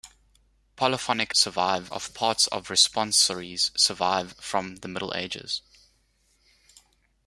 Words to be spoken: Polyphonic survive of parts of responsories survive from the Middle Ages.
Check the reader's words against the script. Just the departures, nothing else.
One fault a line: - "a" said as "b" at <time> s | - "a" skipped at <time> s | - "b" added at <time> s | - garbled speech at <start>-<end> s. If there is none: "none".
none